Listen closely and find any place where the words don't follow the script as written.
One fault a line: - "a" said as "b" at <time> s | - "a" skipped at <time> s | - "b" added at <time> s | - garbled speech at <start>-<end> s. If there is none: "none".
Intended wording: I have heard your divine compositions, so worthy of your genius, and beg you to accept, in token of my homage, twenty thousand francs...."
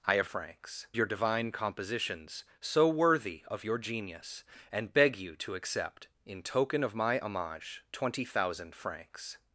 - "heard" said as "francs" at 0.2 s